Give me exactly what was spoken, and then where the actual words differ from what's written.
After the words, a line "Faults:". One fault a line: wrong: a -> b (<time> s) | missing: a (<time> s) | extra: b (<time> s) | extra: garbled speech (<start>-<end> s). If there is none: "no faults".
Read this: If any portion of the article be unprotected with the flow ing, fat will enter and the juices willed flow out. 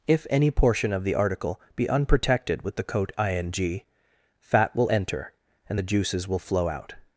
If any portion of the article be unprotected with the coat ing, fat will enter and the juices will flow out.
Faults:
wrong: flow -> coat (2.8 s)
wrong: willed -> will (6.3 s)